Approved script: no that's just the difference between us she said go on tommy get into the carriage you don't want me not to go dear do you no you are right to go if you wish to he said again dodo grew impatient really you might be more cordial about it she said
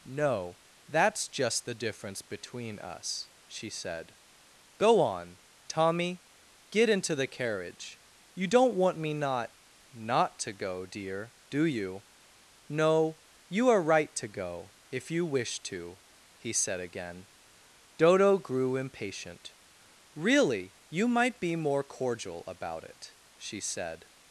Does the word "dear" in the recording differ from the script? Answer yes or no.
no